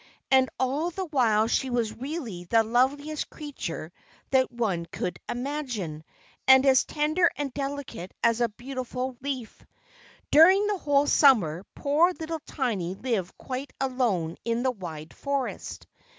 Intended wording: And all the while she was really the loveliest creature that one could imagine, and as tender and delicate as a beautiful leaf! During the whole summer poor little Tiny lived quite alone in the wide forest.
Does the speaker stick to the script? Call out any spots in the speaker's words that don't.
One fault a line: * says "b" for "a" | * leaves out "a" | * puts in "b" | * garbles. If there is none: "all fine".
all fine